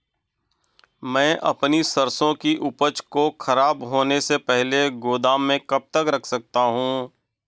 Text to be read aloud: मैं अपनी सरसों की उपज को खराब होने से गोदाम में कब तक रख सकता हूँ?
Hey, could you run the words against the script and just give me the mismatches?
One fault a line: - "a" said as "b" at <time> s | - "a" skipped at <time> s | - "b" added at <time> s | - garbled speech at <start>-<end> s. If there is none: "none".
- "पहले" added at 4.4 s